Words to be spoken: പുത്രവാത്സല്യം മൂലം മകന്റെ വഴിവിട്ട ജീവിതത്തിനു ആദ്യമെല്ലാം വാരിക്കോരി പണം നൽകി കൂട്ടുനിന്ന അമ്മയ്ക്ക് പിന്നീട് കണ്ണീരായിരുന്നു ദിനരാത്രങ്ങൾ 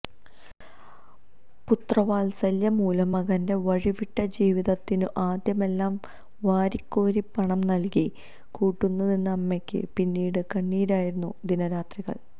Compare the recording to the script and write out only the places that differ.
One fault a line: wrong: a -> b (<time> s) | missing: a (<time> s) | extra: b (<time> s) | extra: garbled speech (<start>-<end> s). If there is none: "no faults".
no faults